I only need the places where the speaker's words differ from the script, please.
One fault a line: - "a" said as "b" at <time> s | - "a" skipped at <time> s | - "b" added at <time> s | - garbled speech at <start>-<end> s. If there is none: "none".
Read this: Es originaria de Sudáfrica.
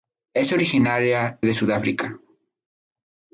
none